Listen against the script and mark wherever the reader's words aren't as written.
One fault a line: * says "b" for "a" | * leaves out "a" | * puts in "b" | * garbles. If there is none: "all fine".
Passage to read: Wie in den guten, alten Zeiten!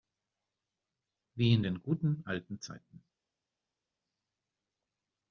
all fine